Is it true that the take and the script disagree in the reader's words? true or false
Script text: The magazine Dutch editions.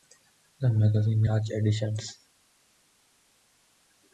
false